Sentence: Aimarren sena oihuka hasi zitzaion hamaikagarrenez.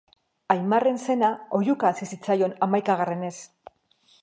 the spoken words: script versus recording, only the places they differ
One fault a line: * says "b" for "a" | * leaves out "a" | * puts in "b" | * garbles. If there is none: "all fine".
all fine